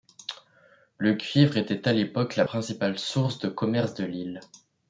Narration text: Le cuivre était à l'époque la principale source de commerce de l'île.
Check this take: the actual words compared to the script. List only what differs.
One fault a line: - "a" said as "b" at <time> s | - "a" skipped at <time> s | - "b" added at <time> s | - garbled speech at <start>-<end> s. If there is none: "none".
none